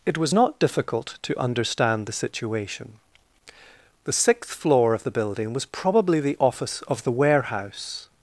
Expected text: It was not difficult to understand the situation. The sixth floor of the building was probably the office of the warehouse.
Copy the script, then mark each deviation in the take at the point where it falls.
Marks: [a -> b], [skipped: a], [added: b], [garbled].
It was not difficult to understand the situation. The sixth floor of the building was probably the office of the warehouse.